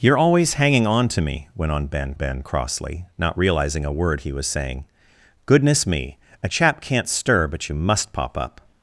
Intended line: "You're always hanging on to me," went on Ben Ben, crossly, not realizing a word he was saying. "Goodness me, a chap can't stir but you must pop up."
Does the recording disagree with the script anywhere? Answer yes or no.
no